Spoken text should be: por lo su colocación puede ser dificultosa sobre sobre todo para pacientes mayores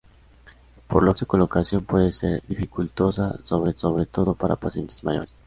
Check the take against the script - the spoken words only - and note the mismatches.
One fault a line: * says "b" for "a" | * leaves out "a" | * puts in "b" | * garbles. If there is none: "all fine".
all fine